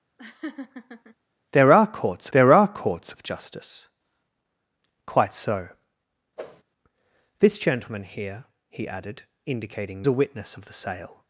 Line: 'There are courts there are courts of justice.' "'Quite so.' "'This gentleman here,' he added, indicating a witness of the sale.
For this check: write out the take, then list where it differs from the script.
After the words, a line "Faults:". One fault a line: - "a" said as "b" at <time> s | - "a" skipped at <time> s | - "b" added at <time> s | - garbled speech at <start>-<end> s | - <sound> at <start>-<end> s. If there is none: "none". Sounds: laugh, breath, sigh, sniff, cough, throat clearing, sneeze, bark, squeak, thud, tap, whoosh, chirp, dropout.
'There are courts there are courts of justice.' "'Quite so.' "'This gentleman here,' he added, indicating a witness of the sale.
Faults:
- laugh at 0.2-1.2 s
- whoosh at 6.4-6.6 s